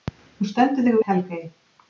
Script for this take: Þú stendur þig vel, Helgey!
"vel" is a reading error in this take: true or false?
true